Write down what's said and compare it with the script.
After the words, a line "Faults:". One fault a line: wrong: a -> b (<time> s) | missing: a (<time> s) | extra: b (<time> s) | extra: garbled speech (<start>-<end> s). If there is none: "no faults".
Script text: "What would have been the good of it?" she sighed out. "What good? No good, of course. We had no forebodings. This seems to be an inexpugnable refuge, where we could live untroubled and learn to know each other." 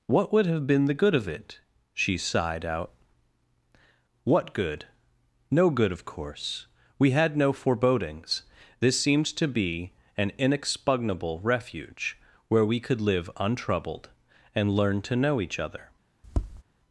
"What would have been the good of it?" she sighed out. "What good? No good, of course. We had no forebodings. This seems to be an inexpugnable refuge, where we could live untroubled and learn to know each other."
Faults:
no faults